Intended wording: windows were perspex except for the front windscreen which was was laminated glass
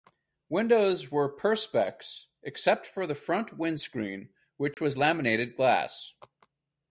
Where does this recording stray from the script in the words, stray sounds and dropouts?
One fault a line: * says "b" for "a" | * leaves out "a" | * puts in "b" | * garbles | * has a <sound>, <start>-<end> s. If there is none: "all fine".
* has a dropout, 4.7-4.8 s
* leaves out "was"